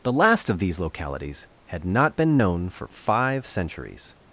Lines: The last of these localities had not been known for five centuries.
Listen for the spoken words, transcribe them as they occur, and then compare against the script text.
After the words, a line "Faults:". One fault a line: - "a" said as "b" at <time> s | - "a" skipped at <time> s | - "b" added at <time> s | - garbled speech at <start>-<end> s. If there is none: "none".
The last of these localities had not been known for five centuries.
Faults:
none